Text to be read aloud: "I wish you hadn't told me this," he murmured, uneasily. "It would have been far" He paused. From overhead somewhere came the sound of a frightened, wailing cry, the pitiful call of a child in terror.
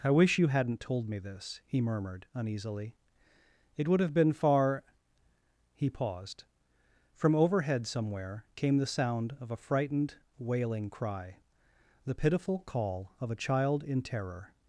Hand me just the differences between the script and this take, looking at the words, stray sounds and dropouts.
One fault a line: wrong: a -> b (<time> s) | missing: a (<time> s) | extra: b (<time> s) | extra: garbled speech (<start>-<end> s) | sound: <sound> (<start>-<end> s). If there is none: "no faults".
no faults